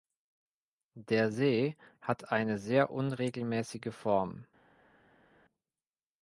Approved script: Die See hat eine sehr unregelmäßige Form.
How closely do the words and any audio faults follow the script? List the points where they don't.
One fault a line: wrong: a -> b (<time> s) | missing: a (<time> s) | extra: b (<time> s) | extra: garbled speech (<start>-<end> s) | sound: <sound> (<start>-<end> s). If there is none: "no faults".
wrong: Die -> Der (0.9 s)